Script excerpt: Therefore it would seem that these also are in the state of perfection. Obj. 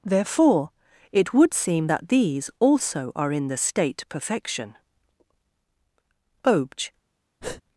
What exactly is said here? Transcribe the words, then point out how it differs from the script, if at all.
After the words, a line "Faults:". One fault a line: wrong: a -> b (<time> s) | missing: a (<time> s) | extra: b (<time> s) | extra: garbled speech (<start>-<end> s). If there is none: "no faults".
Therefore it would seem that these also are in the state perfection. Obj.
Faults:
missing: of (4.0 s)